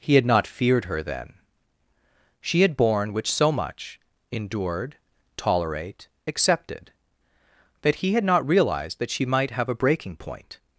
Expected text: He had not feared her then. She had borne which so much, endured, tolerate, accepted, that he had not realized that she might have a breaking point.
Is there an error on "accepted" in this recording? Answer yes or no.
no